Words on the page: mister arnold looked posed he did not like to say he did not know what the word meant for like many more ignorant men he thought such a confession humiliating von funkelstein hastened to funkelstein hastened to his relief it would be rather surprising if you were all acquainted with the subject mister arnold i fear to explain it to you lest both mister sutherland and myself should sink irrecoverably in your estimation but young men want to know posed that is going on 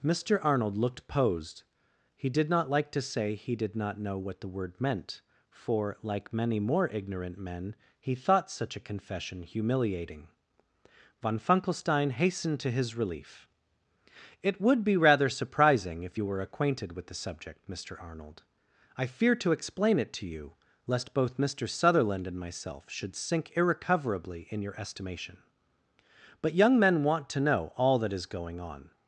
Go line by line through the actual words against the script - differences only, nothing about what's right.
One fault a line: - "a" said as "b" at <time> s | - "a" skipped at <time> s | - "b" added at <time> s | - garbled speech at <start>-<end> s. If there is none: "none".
- "funkelstein hastened to" skipped at 12.7 s
- "all" skipped at 16.4 s
- "posed" said as "all" at 27.7 s